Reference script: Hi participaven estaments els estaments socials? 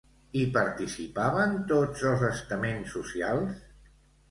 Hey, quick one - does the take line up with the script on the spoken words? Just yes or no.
no